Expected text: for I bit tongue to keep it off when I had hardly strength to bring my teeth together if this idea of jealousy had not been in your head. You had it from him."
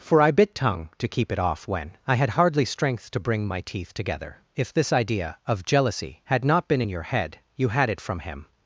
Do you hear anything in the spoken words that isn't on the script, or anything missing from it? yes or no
no